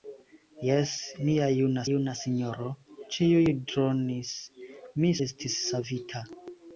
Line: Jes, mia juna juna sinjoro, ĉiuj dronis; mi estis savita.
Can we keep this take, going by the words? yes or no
yes